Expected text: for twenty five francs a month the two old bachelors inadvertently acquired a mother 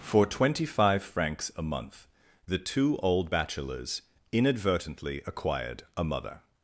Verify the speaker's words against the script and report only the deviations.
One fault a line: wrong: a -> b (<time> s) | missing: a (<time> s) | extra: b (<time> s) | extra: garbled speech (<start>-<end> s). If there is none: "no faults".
no faults